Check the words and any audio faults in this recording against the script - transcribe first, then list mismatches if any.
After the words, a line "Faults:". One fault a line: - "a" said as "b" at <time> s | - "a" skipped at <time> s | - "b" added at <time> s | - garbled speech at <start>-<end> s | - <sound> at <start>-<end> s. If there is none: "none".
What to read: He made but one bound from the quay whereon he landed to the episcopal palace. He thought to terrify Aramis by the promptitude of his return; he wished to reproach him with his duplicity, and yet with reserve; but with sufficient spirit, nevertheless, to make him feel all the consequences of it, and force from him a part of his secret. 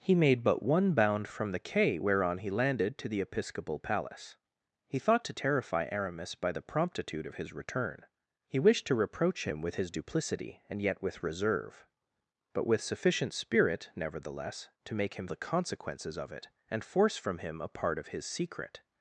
He made but one bound from the quay whereon he landed to the episcopal palace. He thought to terrify Aramis by the promptitude of his return; he wished to reproach him with his duplicity, and yet with reserve; but with sufficient spirit, nevertheless, to make him the consequences of it, and force from him a part of his secret.
Faults:
- "feel all" skipped at 15.3 s